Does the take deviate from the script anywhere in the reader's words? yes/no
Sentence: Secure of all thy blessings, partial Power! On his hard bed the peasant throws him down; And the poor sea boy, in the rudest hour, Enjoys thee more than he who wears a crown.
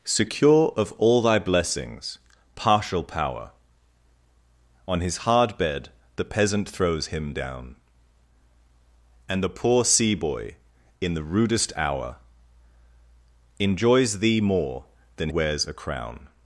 yes